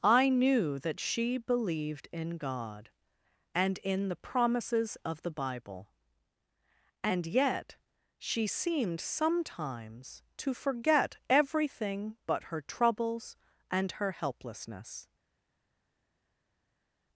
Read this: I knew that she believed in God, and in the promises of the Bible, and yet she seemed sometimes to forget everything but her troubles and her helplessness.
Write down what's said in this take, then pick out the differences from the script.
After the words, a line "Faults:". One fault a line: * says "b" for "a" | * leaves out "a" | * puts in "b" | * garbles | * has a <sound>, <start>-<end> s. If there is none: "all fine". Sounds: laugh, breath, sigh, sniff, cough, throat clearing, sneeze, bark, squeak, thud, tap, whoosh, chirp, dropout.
I knew that she believed in God, and in the promises of the Bible, and yet she seemed sometimes to forget everything but her troubles and her helplessness.
Faults:
all fine